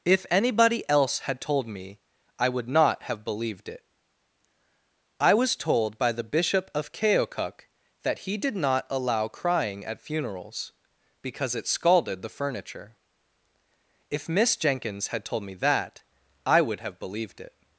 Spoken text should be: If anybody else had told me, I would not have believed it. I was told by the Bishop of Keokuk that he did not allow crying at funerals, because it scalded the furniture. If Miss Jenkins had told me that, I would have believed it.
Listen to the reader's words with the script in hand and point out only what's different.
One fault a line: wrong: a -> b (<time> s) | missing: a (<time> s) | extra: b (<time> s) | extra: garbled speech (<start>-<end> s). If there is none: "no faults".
no faults